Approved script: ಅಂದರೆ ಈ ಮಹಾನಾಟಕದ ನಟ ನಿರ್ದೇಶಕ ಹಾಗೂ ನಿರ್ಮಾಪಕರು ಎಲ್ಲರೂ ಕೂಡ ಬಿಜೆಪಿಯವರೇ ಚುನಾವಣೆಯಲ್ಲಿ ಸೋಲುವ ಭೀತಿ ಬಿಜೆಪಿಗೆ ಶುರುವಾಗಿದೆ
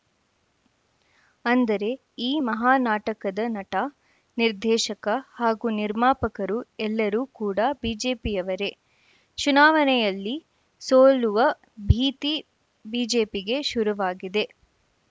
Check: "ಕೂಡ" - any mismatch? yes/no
no